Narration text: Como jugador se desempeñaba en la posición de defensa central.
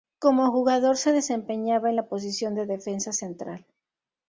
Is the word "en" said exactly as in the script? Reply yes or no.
yes